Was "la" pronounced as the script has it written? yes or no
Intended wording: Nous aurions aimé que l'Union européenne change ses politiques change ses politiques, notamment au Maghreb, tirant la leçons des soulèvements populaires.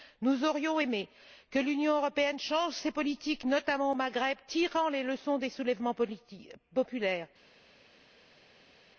no